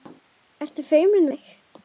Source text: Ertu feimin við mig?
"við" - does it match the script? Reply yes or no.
no